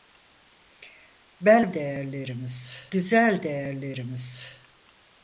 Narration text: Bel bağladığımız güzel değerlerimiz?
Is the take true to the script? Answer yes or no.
no